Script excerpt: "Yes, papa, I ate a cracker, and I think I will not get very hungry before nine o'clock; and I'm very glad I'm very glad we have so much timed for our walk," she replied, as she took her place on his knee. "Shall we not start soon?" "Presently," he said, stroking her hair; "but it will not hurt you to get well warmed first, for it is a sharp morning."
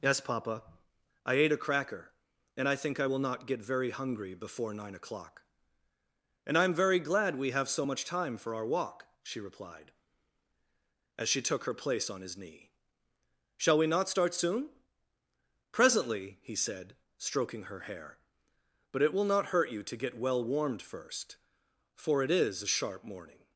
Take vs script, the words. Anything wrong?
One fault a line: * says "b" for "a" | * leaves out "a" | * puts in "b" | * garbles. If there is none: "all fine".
* leaves out "I'm very glad"
* says "time" for "timed"